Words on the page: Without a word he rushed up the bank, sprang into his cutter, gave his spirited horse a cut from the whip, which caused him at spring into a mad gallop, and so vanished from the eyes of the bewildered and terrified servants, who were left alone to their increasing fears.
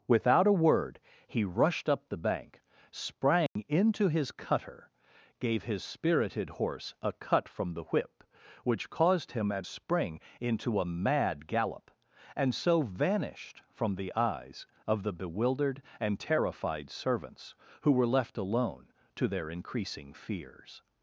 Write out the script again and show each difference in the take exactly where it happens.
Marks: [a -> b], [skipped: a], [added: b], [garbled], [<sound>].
Without a word he rushed up the bank, sprang [dropout] into his cutter, gave his spirited horse a cut from the whip, which caused him at spring into a mad gallop, and so vanished from the eyes of the bewildered and terrified servants, who were left alone to their increasing fears.